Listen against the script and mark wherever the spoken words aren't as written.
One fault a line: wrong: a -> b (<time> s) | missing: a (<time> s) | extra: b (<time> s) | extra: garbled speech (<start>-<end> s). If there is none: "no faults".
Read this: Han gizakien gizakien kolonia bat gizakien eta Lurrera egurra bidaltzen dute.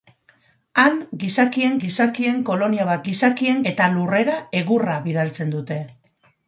no faults